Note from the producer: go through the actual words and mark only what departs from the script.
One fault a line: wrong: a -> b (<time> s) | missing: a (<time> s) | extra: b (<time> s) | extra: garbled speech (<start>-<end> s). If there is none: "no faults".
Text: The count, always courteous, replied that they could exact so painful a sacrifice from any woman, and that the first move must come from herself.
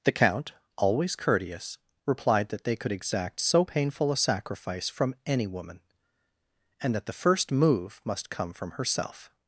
no faults